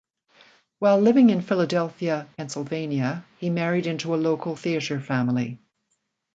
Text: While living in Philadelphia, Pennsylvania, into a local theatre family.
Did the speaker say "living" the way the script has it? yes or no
yes